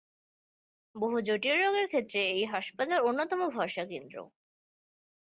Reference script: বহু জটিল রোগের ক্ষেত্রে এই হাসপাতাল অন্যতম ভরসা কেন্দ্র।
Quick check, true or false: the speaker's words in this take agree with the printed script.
true